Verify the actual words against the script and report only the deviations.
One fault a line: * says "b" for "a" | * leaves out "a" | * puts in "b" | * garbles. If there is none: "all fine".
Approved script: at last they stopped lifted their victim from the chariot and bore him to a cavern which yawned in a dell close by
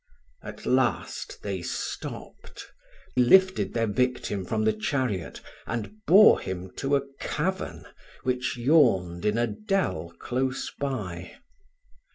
all fine